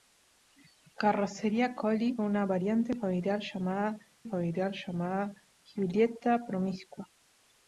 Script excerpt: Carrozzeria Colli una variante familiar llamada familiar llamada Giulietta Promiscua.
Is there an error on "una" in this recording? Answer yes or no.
no